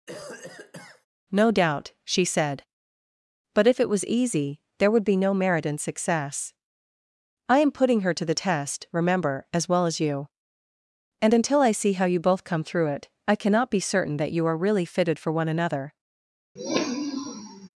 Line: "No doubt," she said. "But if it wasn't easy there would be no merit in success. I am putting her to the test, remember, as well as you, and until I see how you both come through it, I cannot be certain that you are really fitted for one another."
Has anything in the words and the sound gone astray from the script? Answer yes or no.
yes